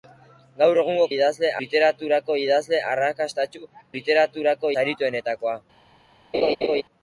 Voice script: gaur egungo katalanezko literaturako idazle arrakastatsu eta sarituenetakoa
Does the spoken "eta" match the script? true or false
false